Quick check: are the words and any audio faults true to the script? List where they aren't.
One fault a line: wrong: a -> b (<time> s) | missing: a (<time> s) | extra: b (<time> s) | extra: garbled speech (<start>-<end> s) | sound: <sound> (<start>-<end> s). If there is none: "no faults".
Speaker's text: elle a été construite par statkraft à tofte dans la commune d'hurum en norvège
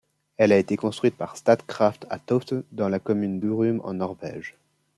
no faults